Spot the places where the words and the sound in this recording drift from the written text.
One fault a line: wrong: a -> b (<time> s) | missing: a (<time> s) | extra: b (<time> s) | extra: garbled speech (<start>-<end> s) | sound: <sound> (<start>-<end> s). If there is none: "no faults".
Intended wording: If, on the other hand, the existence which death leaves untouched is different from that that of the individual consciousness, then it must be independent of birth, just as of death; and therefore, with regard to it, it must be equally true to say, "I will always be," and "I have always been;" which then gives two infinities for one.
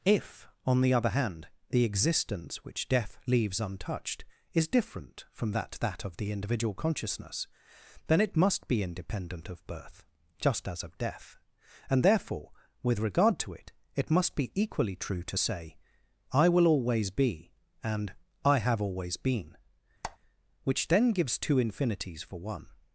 sound: squeak (20.0-20.2 s)